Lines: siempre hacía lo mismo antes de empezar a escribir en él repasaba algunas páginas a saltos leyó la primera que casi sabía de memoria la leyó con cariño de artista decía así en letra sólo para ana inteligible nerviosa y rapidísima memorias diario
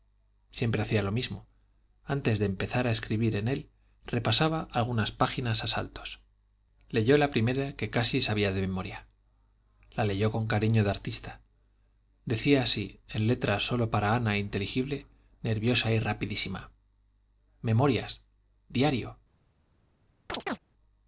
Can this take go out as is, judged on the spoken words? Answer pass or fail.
pass